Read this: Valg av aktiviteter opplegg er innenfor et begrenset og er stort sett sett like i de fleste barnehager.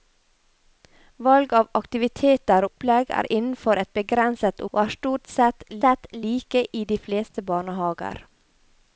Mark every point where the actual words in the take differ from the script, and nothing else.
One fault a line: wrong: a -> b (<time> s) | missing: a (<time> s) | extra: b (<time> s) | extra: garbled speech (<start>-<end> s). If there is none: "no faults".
no faults